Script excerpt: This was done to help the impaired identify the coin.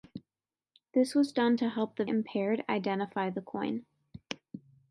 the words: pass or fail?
pass